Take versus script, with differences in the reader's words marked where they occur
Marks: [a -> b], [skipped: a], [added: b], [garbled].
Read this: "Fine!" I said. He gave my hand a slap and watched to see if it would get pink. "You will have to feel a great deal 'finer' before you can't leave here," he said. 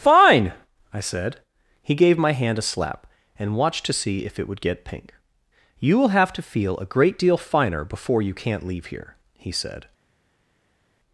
"Fine!" I said. He gave my hand a slap and watched to see if it would get pink. "You will have to feel a great deal 'finer' before you can't leave here," he said.